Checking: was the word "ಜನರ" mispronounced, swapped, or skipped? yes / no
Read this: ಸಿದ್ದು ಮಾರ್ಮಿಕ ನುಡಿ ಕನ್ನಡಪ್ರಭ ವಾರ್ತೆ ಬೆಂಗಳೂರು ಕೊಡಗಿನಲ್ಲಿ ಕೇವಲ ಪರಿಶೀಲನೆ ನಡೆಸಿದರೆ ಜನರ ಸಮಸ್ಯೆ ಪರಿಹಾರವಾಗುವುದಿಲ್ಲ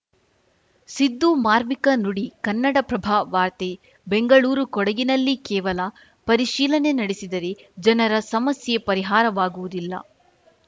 no